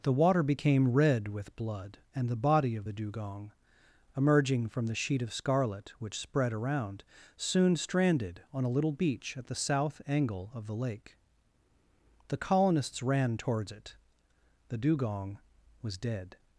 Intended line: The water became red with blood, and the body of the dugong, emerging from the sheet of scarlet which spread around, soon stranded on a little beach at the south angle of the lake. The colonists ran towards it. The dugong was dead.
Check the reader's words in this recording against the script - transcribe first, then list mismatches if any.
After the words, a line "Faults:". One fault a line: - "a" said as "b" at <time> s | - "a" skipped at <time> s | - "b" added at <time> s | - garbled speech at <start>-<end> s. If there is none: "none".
The water became red with blood, and the body of the dugong, emerging from the sheet of scarlet which spread around, soon stranded on a little beach at the south angle of the lake. The colonists ran towards it. The dugong was dead.
Faults:
none